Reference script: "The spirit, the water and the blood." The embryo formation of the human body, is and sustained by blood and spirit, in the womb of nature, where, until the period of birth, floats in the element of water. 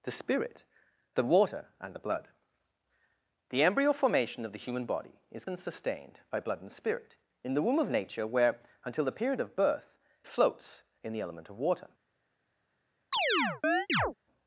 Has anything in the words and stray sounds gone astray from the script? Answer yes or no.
yes